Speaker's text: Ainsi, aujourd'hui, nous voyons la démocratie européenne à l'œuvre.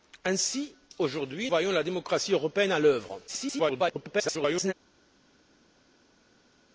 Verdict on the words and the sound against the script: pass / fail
fail